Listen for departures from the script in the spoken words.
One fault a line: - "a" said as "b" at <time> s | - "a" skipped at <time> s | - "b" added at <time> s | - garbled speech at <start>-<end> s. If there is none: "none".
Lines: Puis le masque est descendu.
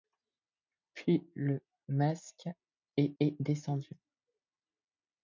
- "est" added at 3.2 s